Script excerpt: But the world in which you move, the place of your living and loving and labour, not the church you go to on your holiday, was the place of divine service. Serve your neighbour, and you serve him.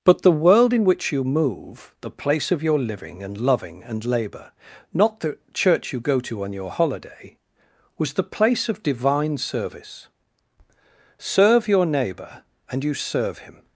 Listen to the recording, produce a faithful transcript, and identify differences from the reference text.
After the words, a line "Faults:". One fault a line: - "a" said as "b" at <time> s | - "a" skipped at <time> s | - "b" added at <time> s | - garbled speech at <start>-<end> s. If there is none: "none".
But the world in which you move, the place of your living and loving and labour, not the church you go to on your holiday, was the place of divine service. Serve your neighbour, and you serve him.
Faults:
none